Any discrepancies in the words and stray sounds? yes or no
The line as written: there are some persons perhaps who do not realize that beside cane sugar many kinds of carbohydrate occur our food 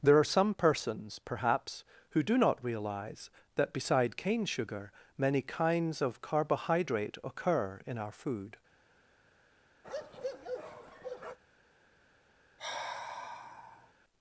yes